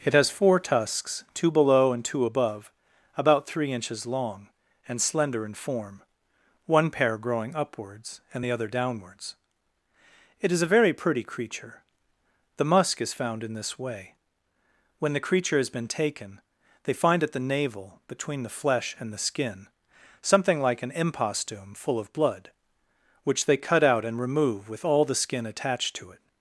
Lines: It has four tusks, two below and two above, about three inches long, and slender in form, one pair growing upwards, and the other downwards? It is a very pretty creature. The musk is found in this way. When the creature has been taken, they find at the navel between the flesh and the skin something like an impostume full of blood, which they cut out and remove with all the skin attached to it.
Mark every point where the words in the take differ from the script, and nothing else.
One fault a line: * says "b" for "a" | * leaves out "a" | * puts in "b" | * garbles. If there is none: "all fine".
all fine